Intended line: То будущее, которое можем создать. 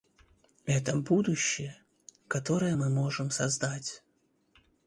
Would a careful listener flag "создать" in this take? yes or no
no